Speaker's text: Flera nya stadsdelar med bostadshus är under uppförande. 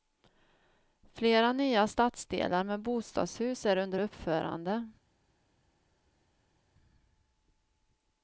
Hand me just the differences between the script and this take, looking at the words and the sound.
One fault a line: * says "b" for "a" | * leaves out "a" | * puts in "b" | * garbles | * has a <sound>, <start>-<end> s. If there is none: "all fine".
all fine